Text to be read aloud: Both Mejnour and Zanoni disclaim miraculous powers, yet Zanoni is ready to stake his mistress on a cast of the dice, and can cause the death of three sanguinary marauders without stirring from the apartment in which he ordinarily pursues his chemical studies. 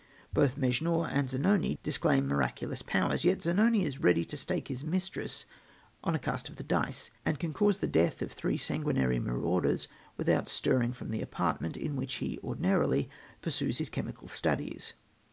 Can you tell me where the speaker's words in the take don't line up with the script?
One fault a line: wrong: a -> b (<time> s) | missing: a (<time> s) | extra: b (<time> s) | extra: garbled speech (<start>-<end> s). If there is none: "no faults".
no faults